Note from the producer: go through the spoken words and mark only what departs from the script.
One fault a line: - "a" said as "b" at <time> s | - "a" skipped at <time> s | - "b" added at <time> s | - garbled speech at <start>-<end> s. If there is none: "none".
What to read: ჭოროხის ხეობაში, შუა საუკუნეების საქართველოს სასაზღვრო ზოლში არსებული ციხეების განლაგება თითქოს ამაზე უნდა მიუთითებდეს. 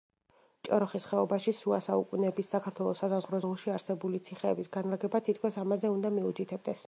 none